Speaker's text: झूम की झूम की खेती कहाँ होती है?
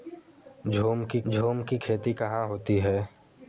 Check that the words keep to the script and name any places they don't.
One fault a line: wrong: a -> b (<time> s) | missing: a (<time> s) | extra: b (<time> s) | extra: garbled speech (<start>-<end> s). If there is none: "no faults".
no faults